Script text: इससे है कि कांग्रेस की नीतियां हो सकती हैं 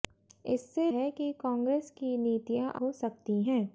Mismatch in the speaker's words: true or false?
false